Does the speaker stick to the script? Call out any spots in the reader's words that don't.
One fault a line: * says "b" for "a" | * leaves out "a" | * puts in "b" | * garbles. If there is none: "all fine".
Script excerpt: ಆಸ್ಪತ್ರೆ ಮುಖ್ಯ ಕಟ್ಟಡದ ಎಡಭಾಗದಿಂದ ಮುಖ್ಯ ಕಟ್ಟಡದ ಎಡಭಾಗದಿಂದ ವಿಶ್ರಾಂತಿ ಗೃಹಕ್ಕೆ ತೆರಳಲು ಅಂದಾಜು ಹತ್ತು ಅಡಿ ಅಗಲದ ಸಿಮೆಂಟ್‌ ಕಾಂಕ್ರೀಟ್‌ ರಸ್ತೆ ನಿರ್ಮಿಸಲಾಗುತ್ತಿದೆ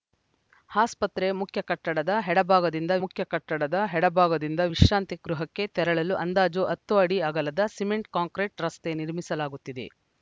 all fine